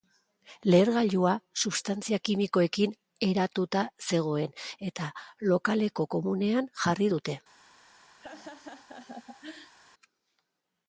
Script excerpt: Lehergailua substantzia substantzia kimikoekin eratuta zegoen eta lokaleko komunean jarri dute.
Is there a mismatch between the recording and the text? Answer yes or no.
yes